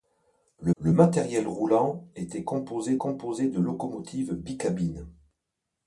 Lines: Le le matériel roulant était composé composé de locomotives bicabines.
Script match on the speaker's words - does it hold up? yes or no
yes